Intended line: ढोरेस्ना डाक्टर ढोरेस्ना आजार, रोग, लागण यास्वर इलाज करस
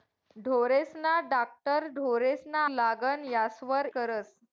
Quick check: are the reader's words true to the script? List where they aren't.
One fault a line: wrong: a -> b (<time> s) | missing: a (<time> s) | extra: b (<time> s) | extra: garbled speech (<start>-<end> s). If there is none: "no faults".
missing: आजार रोग (2.6 s)
missing: इलाज (3.9 s)